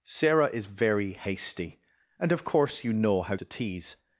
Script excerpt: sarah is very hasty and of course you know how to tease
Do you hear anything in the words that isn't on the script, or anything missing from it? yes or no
no